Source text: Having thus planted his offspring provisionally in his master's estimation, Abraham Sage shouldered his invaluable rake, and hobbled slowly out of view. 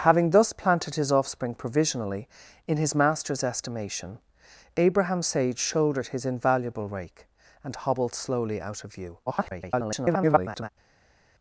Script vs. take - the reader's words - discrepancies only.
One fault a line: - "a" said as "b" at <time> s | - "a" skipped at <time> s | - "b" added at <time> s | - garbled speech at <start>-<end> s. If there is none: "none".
- garbled speech at 9.3-10.7 s